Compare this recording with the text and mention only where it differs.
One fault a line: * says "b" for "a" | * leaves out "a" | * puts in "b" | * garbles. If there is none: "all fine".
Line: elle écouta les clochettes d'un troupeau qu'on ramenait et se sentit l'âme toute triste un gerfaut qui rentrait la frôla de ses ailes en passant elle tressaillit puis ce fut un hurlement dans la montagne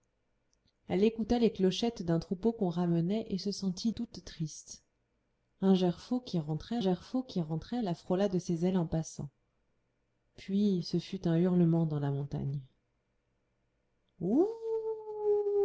* leaves out "l'âme"
* puts in "gerfaut qui rentrait"
* leaves out "elle tressaillit"